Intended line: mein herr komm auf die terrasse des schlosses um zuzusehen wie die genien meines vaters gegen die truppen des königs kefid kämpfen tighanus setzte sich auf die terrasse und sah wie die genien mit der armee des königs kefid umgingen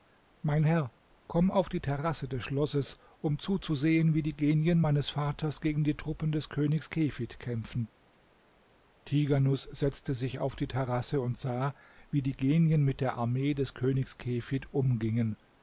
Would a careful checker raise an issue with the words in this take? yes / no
no